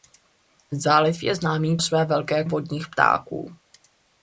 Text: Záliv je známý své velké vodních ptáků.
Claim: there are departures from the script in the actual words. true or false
false